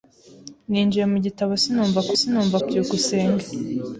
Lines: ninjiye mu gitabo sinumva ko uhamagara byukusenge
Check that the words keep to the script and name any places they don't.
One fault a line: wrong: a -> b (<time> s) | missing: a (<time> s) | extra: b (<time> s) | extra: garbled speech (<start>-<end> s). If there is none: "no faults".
wrong: uhamagara -> sinumva (2.2 s)